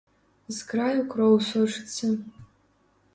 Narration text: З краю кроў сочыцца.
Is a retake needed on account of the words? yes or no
no